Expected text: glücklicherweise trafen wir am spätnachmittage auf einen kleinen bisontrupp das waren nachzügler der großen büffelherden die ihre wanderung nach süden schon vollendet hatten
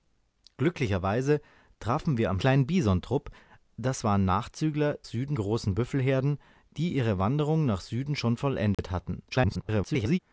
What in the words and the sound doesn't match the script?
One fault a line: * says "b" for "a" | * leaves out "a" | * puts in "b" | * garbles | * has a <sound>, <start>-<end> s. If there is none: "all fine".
* leaves out "spätnachmittage auf einen"
* says "süden" for "der"
* has a dropout, 8.7-8.8 s
* garbles